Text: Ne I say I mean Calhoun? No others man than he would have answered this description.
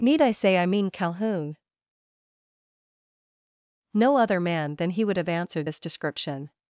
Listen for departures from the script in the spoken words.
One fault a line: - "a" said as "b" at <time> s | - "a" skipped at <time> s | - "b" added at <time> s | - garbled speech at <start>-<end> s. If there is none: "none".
- "Ne" said as "Need" at 0.0 s
- "others" said as "other" at 4.2 s